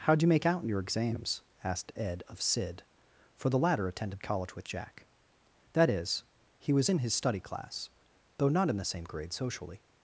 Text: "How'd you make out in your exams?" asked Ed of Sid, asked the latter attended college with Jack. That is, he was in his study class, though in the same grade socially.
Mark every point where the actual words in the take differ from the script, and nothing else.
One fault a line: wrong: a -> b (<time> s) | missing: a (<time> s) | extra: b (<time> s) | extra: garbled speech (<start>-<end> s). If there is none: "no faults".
wrong: asked -> for (3.4 s)
extra: not (8.5 s)